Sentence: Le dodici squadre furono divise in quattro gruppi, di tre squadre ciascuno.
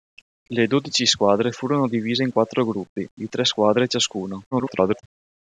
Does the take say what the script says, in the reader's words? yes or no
no